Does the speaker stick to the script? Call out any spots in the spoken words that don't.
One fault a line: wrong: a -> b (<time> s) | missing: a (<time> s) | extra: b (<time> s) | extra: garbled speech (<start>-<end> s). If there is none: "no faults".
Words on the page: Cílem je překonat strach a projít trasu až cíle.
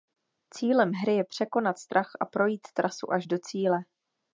extra: hry (0.9 s)
extra: do (3.2 s)